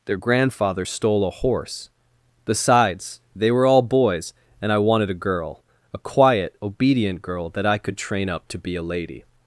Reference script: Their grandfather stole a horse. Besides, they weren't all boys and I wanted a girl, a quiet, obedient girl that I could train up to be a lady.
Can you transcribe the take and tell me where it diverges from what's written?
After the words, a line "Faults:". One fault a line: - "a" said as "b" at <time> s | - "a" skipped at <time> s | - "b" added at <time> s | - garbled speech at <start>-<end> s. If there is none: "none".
Their grandfather stole a horse. Besides, they were all boys and I wanted a girl, a quiet, obedient girl that I could train up to be a lady.
Faults:
- "weren't" said as "were" at 3.5 s